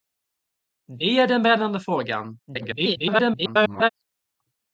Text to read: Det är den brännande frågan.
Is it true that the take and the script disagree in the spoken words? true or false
true